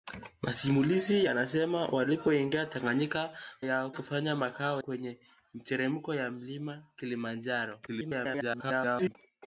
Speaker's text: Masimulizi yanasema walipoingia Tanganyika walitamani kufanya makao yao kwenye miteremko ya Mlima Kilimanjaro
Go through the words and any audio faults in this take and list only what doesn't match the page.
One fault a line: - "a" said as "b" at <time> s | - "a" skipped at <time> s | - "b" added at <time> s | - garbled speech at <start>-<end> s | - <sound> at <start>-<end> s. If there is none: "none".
- "walitamani" said as "yao" at 3.6 s
- "yao" skipped at 4.8 s
- garbled speech at 7.9-9.2 s